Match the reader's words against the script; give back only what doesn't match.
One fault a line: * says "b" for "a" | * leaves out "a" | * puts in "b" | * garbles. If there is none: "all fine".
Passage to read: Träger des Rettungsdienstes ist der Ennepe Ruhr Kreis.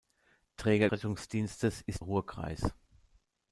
* leaves out "des"
* leaves out "der Ennepe"